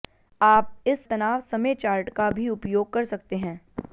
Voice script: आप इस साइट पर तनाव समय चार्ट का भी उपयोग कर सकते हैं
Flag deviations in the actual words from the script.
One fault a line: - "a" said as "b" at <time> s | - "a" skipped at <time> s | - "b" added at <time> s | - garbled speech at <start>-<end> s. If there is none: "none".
- "साइट पर" skipped at 1.1 s